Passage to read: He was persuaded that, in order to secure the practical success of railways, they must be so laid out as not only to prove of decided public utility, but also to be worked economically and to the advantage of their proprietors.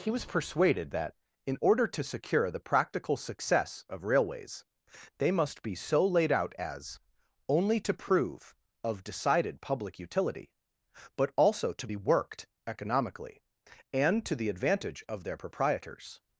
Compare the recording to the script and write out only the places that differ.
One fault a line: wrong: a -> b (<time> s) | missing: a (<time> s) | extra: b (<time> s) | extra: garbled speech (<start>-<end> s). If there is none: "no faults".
missing: not (7.0 s)